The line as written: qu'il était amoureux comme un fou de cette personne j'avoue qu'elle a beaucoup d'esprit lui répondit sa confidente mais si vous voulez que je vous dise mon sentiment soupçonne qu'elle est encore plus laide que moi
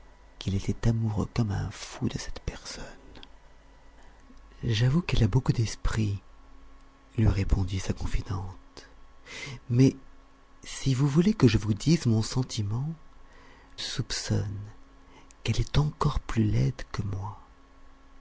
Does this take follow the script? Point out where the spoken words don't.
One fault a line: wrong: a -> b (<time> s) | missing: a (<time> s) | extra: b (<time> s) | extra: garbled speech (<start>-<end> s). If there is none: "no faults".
no faults